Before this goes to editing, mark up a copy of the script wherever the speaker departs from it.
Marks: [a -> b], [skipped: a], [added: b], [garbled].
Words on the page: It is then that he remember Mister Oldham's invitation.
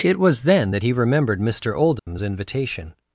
It [is -> was] then that he [remember -> remembered] Mister Oldham's invitation.